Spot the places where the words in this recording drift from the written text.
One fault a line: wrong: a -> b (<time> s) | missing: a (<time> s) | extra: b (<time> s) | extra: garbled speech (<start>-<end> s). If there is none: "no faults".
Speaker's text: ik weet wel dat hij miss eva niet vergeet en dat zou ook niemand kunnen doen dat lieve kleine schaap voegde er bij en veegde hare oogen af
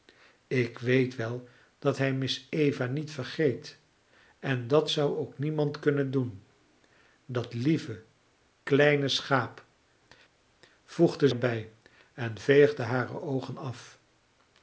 no faults